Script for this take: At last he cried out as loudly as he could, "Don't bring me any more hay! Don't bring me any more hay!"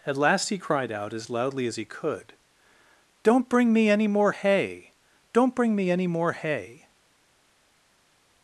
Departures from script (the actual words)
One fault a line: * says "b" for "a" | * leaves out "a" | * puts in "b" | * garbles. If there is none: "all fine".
all fine